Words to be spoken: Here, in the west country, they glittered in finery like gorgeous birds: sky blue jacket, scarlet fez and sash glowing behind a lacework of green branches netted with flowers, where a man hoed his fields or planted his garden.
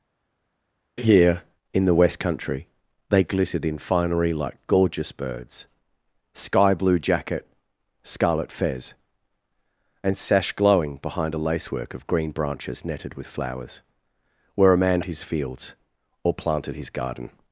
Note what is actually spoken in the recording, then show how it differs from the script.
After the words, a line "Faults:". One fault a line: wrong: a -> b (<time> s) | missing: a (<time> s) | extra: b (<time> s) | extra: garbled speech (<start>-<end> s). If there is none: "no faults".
Here, in the west country, they glittered in finery like gorgeous birds: sky blue jacket, scarlet fez and sash glowing behind a lacework of green branches netted with flowers, where a man his fields or planted his garden.
Faults:
missing: hoed (15.0 s)